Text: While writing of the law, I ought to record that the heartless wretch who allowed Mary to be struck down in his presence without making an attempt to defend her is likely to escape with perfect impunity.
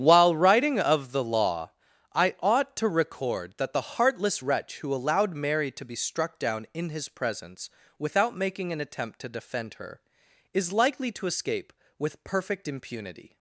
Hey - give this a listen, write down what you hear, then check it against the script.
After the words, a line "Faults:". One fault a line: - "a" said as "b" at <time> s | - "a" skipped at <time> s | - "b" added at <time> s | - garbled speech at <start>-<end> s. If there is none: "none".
While writing of the law, I ought to record that the heartless wretch who allowed Mary to be struck down in his presence without making an attempt to defend her is likely to escape with perfect impunity.
Faults:
none